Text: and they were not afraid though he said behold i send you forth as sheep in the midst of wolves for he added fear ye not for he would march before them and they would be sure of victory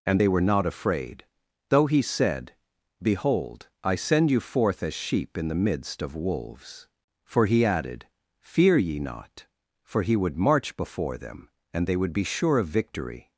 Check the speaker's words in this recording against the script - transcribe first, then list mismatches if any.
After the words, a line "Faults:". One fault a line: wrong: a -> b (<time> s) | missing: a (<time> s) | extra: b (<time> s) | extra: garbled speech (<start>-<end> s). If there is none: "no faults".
and they were not afraid though he said behold i send you forth as sheep in the midst of wolves for he added fear ye not for he would march before them and they would be sure of victory
Faults:
no faults